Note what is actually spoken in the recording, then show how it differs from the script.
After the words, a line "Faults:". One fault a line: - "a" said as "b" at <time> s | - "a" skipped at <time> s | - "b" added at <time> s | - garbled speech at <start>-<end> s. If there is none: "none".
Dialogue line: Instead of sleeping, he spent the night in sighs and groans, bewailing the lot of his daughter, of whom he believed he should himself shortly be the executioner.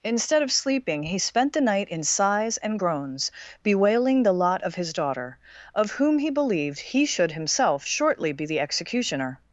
Instead of sleeping, he spent the night in sighs and groans, bewailing the lot of his daughter, of whom he believed he should himself shortly be the executioner.
Faults:
none